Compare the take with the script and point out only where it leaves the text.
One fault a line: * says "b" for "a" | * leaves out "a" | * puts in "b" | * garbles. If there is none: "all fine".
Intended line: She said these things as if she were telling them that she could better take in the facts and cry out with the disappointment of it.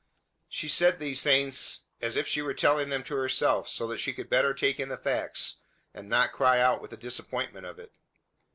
* puts in "to herself so"
* puts in "not"